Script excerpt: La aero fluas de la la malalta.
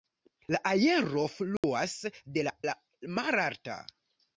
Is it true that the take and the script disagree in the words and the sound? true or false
true